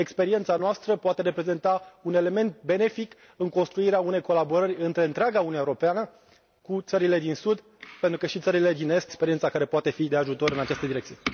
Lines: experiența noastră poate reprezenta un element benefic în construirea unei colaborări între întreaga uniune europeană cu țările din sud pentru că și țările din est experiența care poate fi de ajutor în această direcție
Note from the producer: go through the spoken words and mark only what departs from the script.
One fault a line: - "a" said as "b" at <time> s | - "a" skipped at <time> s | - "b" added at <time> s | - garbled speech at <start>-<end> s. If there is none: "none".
none